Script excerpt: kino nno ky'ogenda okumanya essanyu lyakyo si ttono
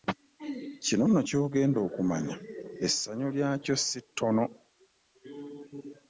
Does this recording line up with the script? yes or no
yes